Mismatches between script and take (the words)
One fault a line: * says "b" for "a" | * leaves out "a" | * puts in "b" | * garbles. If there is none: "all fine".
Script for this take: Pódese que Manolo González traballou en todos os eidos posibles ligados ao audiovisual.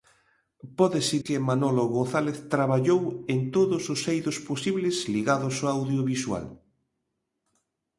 all fine